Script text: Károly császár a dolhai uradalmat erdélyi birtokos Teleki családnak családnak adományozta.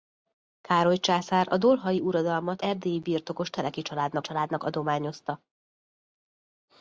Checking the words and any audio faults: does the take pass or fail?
pass